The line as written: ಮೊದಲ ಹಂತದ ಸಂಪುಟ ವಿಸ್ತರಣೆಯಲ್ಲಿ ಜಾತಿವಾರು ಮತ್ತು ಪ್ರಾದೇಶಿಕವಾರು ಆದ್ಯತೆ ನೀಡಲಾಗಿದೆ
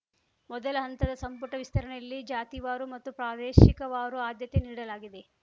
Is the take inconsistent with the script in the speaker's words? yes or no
no